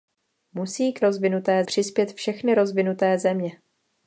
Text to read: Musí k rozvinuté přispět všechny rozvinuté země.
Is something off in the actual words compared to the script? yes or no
no